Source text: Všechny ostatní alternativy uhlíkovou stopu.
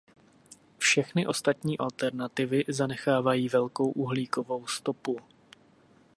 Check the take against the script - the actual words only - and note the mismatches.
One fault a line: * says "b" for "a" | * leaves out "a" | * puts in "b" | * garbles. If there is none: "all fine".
* puts in "zanechávají velkou"